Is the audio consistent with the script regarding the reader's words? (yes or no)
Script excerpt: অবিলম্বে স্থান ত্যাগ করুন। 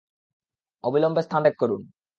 yes